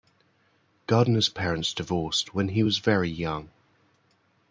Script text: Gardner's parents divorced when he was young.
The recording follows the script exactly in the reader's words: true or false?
false